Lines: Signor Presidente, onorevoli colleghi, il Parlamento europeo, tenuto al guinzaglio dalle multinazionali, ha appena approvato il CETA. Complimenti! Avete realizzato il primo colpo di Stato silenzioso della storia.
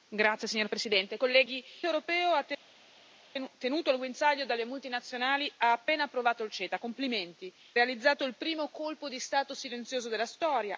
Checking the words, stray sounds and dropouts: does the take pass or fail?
fail